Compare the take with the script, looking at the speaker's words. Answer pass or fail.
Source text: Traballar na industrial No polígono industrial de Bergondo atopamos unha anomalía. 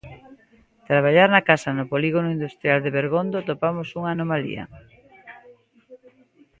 fail